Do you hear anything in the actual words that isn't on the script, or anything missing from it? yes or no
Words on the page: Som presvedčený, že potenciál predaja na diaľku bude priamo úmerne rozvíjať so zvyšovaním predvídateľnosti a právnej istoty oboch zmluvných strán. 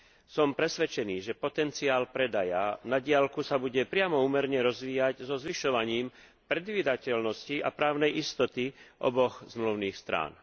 yes